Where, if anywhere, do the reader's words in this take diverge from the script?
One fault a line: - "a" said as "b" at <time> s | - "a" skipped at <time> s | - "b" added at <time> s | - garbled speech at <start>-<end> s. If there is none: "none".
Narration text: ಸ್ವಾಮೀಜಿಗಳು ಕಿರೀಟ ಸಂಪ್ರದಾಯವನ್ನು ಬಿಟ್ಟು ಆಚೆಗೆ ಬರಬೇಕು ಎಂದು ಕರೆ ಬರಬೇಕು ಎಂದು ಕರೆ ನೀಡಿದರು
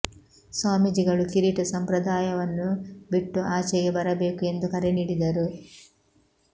- "ಬರಬೇಕು ಎಂದು ಕರೆ" skipped at 4.9 s